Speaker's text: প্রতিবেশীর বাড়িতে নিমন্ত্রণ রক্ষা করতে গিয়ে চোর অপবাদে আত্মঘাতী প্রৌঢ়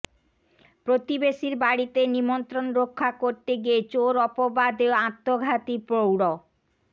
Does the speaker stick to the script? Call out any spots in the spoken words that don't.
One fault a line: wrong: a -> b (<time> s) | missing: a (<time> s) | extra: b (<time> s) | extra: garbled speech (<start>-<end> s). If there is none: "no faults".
no faults